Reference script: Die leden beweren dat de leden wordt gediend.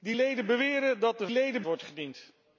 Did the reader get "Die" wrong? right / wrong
right